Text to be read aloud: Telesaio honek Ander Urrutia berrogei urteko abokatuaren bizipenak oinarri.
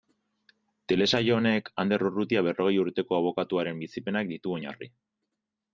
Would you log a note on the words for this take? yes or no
yes